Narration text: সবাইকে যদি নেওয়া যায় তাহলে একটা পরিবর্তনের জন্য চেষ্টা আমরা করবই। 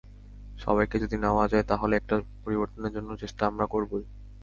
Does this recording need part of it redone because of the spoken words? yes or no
no